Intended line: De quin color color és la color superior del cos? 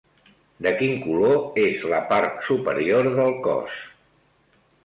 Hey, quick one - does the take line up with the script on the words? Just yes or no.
no